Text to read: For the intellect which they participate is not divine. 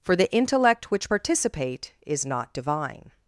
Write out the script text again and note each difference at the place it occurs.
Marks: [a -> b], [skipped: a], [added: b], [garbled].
For the intellect which [skipped: they] participate is not divine.